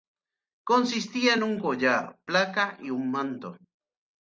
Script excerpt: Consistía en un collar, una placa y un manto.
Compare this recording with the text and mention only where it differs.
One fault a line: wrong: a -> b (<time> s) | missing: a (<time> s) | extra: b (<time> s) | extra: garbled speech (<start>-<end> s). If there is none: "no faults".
missing: una (2.2 s)